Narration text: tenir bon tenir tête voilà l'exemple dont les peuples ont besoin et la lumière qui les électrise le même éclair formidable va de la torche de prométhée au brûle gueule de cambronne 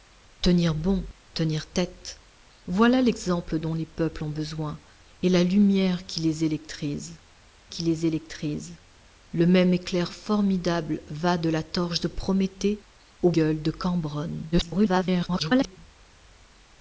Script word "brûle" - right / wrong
wrong